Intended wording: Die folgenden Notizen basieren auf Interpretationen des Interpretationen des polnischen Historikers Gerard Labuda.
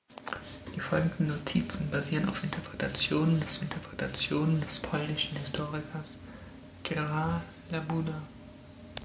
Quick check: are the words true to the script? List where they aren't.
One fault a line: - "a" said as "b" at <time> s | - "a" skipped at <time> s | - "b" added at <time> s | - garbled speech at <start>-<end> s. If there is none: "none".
none